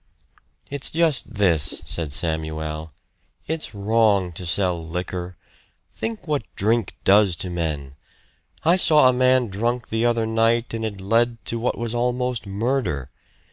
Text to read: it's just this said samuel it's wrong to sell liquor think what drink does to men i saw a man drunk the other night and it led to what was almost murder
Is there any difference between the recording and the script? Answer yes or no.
no